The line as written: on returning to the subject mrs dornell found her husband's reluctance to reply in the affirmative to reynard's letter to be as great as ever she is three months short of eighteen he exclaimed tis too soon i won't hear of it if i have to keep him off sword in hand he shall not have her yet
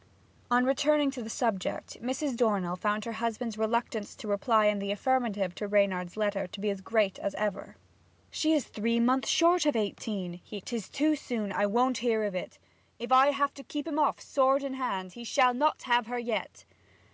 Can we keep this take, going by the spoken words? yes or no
no